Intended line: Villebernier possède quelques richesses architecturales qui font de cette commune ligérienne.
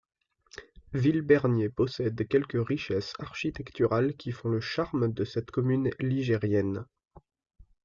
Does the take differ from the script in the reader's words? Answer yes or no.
yes